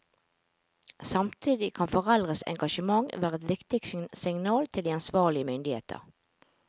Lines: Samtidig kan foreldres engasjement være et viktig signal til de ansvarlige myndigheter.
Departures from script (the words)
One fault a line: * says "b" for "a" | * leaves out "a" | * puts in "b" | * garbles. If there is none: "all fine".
all fine